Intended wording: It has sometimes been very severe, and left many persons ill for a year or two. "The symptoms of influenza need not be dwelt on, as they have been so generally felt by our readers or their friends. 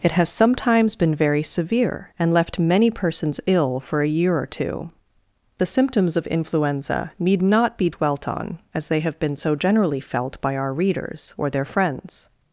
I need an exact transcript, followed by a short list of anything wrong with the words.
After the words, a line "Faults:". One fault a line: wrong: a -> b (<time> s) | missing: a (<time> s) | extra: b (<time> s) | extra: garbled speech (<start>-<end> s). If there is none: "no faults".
It has sometimes been very severe, and left many persons ill for a year or two. "The symptoms of influenza need not be dwelt on, as they have been so generally felt by our readers or their friends.
Faults:
no faults